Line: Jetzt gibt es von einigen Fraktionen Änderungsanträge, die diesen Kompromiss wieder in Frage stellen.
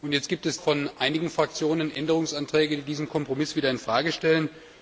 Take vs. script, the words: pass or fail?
pass